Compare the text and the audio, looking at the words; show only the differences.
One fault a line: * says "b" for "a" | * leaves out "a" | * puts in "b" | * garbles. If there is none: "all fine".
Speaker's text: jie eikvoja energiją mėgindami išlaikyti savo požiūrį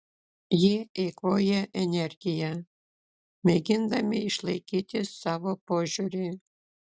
all fine